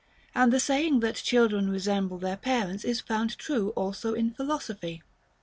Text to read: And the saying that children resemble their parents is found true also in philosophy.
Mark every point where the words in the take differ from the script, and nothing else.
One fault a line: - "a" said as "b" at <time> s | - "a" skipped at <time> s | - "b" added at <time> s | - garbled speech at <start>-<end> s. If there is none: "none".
none